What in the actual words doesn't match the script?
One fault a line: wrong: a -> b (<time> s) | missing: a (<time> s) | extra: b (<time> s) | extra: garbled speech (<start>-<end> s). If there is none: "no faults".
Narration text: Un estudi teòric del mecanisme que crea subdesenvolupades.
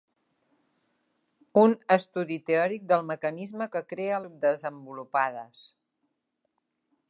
no faults